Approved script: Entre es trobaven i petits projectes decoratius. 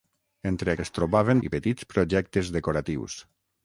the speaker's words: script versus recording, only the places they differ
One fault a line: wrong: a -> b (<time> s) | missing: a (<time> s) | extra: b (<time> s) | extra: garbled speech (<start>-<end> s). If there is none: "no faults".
no faults